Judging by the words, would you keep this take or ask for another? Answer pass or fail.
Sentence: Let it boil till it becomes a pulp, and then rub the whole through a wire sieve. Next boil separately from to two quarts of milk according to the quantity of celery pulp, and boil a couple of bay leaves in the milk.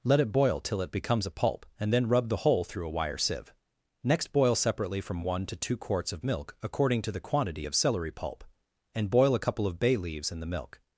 fail